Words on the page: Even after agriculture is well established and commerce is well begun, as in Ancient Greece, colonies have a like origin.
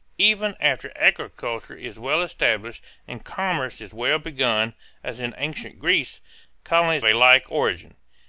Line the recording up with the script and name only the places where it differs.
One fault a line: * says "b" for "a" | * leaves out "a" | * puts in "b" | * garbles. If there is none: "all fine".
* leaves out "have"